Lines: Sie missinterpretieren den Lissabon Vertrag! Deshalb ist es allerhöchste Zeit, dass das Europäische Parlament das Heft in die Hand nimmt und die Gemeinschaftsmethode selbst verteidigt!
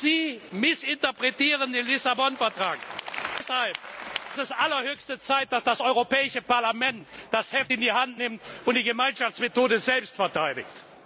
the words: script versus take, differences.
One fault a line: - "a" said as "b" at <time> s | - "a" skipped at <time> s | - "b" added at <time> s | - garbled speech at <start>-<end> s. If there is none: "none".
none